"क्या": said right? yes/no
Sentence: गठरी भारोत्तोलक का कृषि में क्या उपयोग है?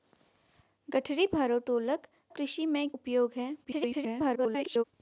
no